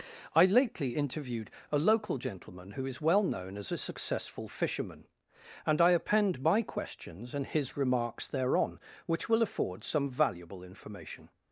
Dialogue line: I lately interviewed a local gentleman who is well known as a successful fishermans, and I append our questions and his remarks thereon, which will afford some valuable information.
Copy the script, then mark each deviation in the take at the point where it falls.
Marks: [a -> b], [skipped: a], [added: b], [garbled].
I lately interviewed a local gentleman who is well known as a successful [fishermans, -> fisherman] and I append [our -> my] questions and his remarks thereon, which will afford some valuable information.